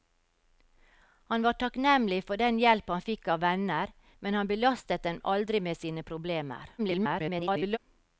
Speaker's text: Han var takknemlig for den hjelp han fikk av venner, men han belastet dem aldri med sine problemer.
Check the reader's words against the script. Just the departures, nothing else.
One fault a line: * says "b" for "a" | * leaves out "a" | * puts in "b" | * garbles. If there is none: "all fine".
* garbles